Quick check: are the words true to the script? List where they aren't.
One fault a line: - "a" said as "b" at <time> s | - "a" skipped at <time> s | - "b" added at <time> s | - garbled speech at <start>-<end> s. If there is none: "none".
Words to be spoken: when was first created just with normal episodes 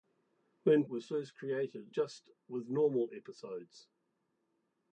none